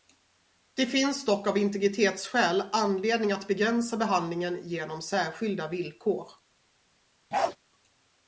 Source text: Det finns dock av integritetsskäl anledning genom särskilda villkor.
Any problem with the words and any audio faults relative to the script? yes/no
yes